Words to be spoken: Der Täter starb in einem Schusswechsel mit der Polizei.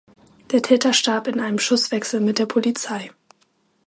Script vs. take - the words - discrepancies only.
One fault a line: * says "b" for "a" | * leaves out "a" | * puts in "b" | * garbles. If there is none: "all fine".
all fine